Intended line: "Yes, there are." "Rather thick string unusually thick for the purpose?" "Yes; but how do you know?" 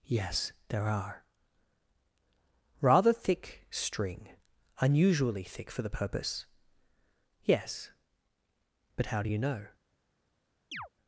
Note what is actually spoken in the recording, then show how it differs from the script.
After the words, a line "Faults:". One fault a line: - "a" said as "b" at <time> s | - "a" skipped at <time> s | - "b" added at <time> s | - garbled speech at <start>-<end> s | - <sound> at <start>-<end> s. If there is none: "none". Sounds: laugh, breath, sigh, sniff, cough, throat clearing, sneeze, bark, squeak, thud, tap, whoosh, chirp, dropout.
"Yes, there are." "Rather thick string unusually thick for the purpose?" "Yes; but how do you know?"
Faults:
- chirp at 10.7-10.9 s